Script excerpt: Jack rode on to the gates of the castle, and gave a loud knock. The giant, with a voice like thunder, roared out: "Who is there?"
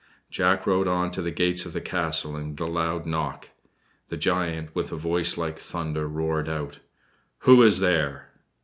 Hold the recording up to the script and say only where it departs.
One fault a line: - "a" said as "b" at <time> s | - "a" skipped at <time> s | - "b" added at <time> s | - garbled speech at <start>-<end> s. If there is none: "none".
- "gave" skipped at 2.6 s